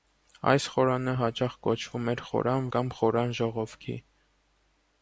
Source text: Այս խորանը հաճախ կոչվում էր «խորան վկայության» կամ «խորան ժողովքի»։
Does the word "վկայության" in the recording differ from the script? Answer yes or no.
yes